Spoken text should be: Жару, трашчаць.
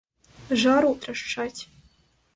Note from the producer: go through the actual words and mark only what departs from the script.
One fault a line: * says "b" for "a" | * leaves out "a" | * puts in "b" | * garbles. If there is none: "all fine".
all fine